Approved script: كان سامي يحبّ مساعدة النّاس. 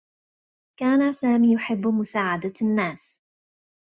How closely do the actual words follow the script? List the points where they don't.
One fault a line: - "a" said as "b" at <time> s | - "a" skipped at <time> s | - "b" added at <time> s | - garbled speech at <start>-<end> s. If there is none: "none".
none